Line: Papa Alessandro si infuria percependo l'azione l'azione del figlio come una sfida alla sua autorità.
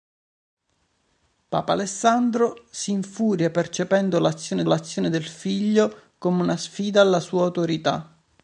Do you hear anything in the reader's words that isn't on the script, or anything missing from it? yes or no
no